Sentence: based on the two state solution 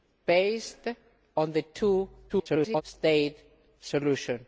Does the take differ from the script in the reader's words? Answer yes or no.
yes